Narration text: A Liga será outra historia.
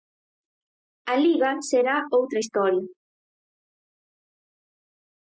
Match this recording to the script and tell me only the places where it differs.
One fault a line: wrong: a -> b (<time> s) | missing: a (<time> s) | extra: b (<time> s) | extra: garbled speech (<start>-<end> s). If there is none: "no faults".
no faults